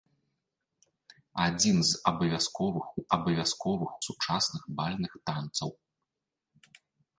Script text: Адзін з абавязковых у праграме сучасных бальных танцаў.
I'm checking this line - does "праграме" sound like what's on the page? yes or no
no